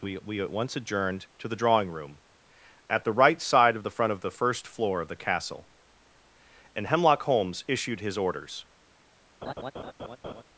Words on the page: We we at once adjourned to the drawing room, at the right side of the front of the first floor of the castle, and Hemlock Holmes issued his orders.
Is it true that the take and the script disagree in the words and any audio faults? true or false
true